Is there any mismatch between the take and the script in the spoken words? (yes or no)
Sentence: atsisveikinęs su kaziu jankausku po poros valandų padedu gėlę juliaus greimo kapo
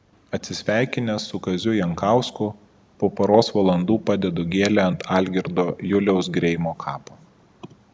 yes